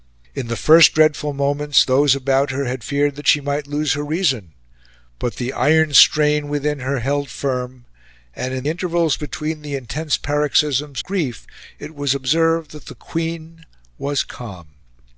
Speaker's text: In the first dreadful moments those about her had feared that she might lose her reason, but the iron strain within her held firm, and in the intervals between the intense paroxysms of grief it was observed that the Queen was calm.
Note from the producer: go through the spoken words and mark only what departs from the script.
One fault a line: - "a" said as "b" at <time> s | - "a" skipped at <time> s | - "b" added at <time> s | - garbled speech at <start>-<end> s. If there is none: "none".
- "the" skipped at 8.7 s
- "of" skipped at 11.0 s